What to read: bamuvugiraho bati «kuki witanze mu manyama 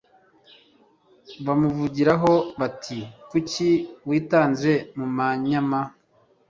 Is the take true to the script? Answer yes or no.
yes